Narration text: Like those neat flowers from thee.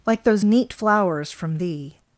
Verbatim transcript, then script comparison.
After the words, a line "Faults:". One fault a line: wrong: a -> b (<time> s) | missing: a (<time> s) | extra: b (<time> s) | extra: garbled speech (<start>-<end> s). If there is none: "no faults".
Like those neat flowers from thee.
Faults:
no faults